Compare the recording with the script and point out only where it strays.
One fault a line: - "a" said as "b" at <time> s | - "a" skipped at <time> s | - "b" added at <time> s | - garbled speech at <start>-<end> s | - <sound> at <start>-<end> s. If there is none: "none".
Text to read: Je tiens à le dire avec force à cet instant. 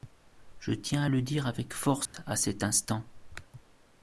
- dropout at 2.1-2.1 s